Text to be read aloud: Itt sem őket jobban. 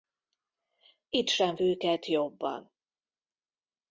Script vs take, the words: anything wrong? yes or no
no